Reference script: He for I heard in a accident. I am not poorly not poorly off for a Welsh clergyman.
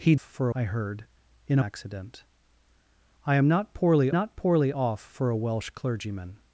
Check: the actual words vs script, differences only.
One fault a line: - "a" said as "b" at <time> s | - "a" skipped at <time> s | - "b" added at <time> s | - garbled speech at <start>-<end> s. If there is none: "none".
none